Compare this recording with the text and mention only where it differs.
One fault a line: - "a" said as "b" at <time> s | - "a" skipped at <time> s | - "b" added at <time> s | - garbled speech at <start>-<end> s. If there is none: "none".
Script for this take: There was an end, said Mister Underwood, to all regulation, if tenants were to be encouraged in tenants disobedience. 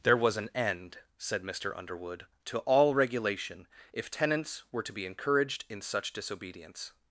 - "tenants" said as "such" at 5.8 s